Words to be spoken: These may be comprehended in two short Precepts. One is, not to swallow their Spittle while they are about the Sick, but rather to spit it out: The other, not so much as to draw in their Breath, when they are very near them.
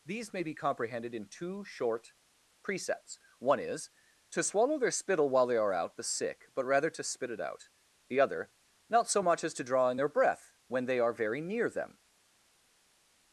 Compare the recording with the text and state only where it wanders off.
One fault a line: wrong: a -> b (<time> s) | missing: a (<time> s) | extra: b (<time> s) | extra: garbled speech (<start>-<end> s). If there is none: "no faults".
missing: not (3.9 s)
wrong: about -> out (5.7 s)